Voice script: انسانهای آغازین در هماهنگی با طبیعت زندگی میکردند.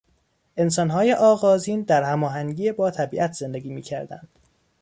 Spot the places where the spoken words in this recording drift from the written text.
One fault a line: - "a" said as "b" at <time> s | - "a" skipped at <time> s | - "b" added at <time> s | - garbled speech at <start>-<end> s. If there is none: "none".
none